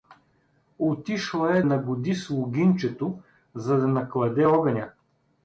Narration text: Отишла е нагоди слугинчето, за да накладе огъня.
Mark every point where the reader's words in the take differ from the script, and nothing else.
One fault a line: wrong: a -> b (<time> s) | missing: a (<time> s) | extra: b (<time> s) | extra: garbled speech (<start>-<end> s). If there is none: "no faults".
no faults